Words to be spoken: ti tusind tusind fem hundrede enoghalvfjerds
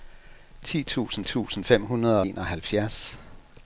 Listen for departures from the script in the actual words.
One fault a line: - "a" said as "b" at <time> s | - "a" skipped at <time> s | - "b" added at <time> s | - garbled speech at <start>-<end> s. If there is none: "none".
none